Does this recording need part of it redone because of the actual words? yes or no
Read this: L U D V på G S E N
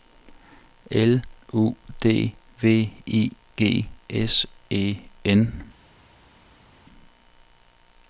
yes